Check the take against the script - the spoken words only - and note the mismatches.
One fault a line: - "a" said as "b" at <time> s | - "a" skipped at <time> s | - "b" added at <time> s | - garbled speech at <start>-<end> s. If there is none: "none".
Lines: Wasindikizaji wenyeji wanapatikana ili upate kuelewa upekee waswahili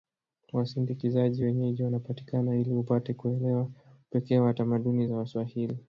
- "wa tamaduni za" added at 4.4 s